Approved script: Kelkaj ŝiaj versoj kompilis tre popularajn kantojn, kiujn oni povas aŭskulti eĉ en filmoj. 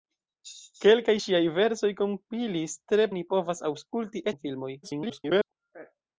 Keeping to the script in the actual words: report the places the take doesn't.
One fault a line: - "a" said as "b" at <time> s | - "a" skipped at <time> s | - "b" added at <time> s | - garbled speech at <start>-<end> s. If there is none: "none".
- "popularajn kantojn kiujn" skipped at 3.1 s
- "eĉ" skipped at 4.3 s
- garbled speech at 4.8-5.5 s